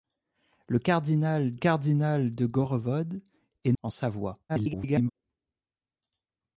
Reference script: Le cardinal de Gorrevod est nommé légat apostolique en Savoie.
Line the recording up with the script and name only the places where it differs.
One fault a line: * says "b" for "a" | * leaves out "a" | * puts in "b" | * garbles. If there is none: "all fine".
* puts in "cardinal"
* leaves out "nommé légat apostolique"
* garbles